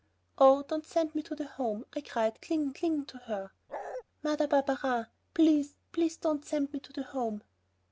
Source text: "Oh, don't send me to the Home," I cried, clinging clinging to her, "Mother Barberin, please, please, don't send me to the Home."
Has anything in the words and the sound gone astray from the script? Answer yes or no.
yes